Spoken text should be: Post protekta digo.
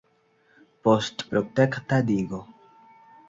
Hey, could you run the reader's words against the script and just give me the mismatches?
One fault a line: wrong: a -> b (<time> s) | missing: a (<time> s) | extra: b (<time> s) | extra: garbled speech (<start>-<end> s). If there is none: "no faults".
no faults